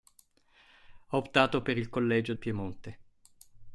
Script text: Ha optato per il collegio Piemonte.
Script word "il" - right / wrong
right